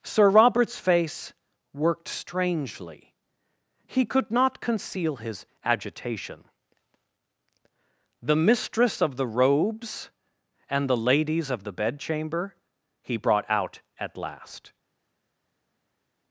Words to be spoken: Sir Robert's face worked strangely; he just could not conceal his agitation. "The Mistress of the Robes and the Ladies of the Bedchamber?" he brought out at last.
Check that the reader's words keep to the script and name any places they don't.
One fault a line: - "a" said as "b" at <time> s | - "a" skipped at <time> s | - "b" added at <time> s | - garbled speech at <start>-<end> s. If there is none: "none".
- "just" skipped at 4.0 s